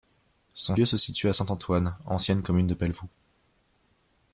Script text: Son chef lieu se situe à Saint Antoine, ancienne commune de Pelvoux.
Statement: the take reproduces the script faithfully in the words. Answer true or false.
false